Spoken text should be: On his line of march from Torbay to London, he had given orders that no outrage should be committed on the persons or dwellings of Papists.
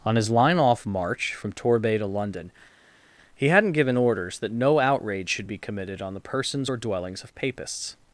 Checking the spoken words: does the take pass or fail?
fail